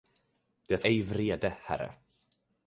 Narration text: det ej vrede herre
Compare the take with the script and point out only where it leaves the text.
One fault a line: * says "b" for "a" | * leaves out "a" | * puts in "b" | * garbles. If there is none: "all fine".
all fine